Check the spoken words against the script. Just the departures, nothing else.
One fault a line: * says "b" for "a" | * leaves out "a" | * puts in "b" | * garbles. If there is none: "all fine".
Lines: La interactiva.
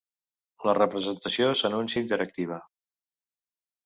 * puts in "representació s'anuncia"